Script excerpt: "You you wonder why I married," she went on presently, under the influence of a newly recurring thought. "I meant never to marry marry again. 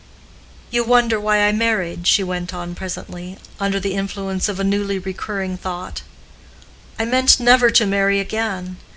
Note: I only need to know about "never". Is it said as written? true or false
true